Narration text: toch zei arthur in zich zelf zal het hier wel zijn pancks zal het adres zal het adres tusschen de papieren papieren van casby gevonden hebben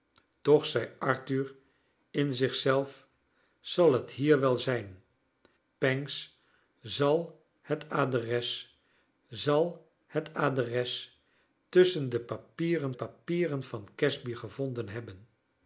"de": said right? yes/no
yes